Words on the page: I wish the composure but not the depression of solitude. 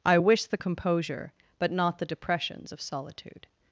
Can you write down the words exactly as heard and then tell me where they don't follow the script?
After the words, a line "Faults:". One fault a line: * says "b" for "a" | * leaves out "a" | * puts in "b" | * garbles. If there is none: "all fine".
I wish the composure but not the depressions of solitude.
Faults:
* says "depressions" for "depression"